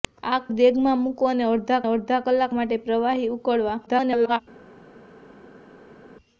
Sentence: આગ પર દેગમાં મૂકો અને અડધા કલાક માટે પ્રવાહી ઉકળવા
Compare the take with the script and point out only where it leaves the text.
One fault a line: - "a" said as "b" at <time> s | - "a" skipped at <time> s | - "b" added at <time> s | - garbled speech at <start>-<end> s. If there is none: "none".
- "પર" skipped at 0.4 s
- "અડધા" added at 1.9 s
- garbled speech at 3.9-4.4 s